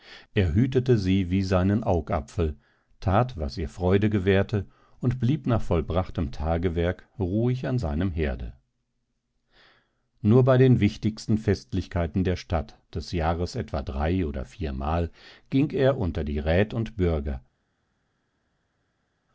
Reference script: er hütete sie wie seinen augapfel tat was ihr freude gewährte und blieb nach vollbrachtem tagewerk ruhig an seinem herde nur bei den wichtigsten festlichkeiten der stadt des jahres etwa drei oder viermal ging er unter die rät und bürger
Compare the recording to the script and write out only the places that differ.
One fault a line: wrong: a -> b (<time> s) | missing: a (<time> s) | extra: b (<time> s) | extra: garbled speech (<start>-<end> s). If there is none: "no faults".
no faults